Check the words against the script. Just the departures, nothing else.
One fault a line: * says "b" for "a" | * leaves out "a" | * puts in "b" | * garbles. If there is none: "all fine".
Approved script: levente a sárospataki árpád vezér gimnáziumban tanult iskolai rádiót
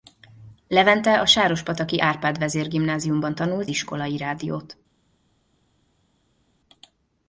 all fine